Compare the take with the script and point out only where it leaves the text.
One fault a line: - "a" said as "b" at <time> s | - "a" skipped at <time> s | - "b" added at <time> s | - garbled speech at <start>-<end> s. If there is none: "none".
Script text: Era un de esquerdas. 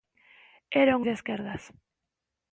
none